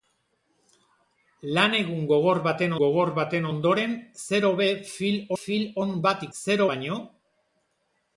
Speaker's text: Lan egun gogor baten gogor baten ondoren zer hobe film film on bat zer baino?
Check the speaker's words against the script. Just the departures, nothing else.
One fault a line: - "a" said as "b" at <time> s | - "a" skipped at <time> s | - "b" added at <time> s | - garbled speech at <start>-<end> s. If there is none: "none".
none